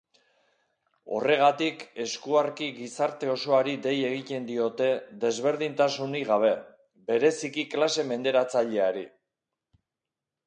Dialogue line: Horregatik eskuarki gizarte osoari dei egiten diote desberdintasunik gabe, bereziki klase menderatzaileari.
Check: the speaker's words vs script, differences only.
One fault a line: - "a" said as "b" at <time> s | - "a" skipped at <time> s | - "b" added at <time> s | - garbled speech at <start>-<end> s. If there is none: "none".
none